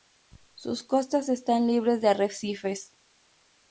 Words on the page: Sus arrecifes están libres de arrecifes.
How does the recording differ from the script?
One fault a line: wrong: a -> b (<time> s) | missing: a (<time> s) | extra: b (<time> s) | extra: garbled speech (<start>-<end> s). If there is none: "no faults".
wrong: arrecifes -> costas (0.8 s)